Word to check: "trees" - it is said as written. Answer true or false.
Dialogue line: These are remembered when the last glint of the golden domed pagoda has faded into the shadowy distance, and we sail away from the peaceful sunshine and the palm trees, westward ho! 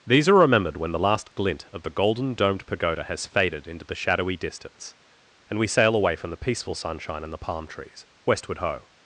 true